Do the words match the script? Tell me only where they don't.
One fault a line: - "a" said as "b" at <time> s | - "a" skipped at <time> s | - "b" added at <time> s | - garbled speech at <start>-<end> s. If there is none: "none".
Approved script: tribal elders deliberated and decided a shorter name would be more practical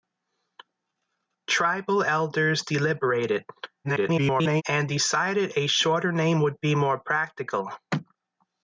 - garbled speech at 3.8-4.6 s